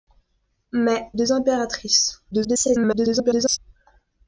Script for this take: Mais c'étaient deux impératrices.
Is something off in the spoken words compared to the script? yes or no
yes